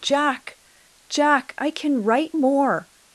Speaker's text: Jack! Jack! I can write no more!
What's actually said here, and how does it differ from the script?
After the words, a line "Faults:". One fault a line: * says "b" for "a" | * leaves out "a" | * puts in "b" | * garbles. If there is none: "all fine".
Jack! Jack! I can write more!
Faults:
* leaves out "no"